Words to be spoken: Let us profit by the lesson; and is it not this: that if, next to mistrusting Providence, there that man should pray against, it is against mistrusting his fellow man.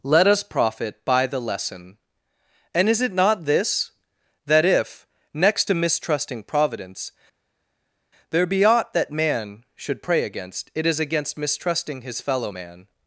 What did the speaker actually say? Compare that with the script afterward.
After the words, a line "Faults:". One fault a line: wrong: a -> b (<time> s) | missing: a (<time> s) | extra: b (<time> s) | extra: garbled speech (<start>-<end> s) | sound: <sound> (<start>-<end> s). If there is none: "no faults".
Let us profit by the lesson; and is it not this: that if, next to mistrusting Providence, there be aught that man should pray against, it is against mistrusting his fellow man.
Faults:
extra: be aught (8.5 s)